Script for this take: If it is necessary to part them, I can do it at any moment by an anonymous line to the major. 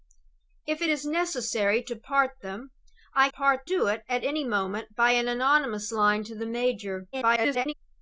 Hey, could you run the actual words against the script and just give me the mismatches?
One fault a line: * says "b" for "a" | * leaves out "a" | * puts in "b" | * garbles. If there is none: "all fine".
* says "part" for "can"
* garbles